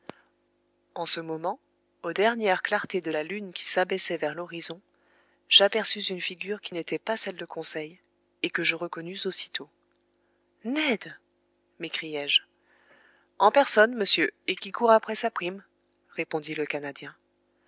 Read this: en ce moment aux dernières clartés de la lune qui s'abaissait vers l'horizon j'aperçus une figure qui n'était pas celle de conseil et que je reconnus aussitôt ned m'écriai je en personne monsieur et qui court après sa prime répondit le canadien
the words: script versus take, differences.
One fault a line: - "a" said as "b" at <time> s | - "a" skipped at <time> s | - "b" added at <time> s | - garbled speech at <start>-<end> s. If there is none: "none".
none